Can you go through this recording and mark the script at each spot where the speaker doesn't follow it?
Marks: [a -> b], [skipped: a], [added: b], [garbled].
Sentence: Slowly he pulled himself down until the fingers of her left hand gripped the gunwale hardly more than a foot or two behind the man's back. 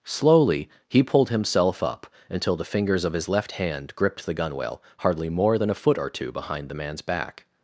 Slowly he pulled himself [down -> up] until the fingers of [her -> his] left hand gripped the gunwale hardly more than a foot or two behind the man's back.